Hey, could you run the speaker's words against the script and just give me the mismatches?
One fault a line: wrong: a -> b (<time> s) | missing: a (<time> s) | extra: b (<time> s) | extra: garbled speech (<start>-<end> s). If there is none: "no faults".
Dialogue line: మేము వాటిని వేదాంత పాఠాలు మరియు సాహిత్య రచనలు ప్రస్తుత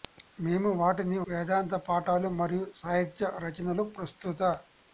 no faults